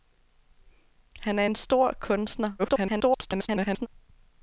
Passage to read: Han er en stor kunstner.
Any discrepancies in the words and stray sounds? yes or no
yes